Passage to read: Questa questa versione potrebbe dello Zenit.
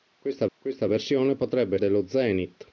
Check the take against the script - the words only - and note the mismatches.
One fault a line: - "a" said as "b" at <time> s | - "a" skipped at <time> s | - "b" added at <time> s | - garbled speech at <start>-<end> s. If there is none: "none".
none